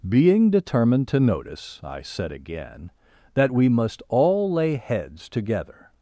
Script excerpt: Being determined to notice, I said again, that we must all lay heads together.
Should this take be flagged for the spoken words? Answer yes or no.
no